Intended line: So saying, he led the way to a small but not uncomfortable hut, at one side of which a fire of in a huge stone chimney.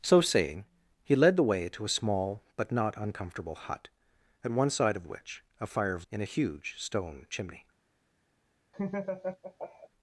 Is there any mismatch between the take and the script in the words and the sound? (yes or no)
yes